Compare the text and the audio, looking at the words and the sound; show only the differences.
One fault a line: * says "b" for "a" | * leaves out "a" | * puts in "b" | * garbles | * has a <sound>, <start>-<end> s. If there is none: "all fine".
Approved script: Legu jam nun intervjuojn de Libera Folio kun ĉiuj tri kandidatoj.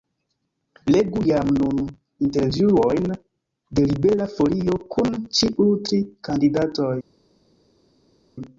all fine